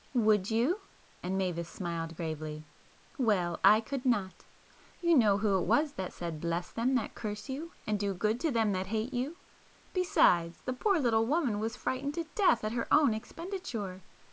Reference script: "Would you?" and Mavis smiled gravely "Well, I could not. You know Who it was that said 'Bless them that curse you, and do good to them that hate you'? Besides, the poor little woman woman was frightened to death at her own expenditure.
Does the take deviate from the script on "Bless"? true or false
false